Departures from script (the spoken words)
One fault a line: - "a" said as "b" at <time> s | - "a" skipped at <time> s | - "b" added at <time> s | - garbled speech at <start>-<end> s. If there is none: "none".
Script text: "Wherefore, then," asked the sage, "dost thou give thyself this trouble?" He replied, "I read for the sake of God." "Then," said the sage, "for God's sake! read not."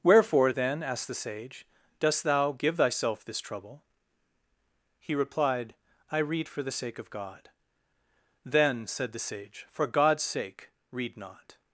none